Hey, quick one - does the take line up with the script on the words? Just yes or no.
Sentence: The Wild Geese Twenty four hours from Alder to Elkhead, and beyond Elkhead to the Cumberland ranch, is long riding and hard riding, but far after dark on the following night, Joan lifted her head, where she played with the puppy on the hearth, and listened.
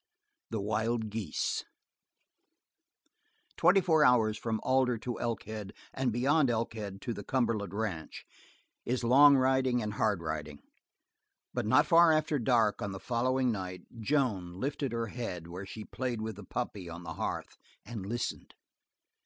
no